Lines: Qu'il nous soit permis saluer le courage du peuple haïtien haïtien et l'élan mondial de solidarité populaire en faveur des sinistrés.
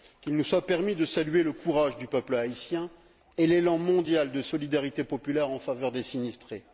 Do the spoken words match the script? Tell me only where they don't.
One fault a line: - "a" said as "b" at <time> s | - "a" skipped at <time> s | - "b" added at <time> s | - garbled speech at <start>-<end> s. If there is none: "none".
- "de" added at 0.9 s
- "haïtien" skipped at 2.9 s